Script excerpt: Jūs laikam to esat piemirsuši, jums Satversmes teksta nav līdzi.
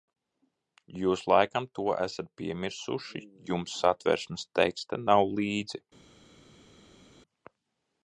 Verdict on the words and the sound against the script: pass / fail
pass